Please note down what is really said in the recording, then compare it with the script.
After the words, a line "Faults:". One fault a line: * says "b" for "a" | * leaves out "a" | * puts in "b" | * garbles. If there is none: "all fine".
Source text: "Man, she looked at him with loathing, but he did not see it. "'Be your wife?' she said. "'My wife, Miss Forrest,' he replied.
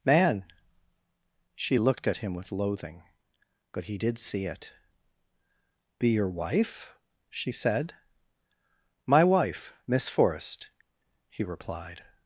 "Man, she looked at him with loathing, but he did see it. "'Be your wife?' she said. "'My wife, Miss Forrest,' he replied.
Faults:
* leaves out "not"